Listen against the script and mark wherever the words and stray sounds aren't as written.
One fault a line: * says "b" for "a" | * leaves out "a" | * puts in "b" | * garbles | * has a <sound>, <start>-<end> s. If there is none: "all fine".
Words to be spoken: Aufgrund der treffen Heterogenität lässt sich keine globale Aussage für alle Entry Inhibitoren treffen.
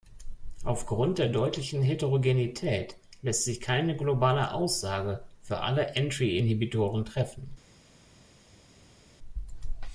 * says "deutlichen" for "treffen"